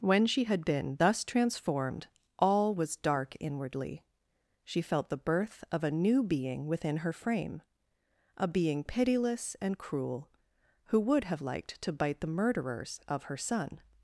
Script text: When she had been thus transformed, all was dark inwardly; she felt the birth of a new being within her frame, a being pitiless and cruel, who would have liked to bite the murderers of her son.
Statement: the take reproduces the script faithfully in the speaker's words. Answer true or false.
true